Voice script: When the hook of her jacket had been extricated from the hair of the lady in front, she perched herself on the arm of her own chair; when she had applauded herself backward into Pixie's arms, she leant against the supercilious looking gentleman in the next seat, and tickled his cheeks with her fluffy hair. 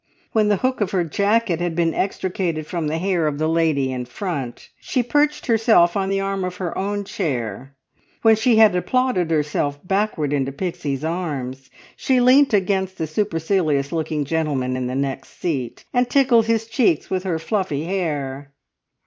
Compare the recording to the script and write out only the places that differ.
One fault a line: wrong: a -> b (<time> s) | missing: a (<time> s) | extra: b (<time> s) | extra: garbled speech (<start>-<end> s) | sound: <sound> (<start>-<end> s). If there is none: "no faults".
no faults